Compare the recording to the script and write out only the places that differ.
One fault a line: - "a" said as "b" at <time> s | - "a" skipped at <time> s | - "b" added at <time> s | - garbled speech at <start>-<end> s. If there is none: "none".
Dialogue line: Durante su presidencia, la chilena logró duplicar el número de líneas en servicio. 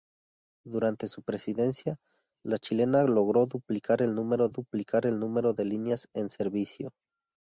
- "duplicar el número" added at 4.5 s